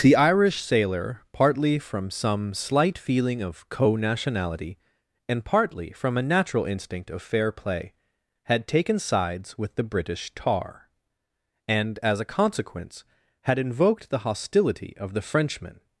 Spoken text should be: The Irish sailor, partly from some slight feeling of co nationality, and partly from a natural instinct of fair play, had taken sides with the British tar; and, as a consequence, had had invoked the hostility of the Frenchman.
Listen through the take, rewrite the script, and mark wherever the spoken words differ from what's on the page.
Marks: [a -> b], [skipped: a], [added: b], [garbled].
The Irish sailor, partly from some slight feeling of co nationality, and partly from a natural instinct of fair play, had taken sides with the British tar; and, as a consequence, had [skipped: had] invoked the hostility of the Frenchman.